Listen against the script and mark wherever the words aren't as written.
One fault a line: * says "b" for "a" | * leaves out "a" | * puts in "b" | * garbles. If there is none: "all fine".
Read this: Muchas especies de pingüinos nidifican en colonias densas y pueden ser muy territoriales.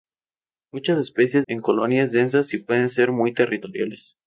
* leaves out "de pingüinos nidifican"